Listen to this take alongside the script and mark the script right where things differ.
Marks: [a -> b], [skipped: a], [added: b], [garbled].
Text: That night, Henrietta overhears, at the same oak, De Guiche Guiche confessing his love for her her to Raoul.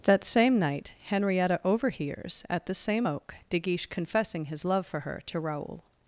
That [added: same] night, Henrietta overhears, at the same oak, De Guiche [skipped: Guiche] confessing his love for her [skipped: her] to Raoul.